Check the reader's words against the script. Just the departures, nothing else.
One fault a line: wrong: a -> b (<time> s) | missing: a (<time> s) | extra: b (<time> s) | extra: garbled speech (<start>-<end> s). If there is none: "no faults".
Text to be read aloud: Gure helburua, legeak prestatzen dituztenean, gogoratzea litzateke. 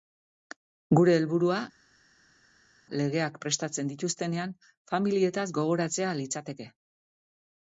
extra: familietaz (4.9 s)